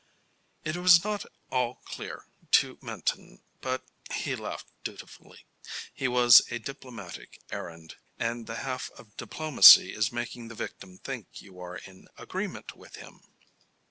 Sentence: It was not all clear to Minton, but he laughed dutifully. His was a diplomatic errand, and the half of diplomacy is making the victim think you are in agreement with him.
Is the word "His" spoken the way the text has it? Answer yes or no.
yes